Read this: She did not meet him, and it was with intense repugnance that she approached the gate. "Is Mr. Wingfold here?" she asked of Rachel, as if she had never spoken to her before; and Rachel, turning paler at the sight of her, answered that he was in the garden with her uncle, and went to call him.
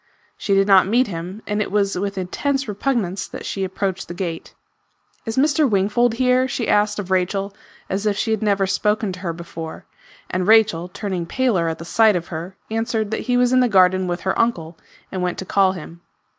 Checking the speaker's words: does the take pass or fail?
pass